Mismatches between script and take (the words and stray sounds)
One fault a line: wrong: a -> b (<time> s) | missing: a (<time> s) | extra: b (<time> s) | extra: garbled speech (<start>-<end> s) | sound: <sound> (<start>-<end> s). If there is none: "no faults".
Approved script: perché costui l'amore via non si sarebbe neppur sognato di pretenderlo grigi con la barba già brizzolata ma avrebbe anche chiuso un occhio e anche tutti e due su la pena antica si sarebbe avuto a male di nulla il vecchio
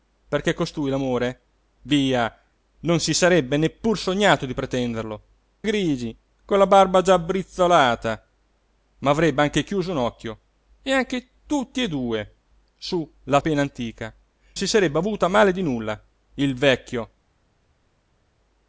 no faults